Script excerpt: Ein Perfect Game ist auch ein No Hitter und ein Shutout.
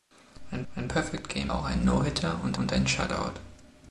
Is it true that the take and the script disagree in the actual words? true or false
true